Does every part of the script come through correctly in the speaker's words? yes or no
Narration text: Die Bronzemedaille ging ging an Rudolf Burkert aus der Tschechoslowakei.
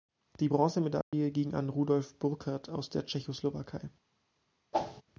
no